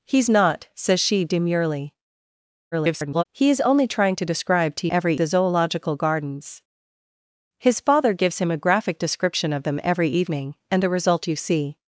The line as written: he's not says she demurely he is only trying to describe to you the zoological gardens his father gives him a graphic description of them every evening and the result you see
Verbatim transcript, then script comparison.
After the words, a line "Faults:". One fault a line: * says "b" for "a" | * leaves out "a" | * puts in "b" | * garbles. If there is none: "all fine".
he's not says she demurely [garbled] he is only trying to describe to every the zoological gardens his father gives him a graphic description of them every evening and the result you see
Faults:
* garbles
* says "every" for "you"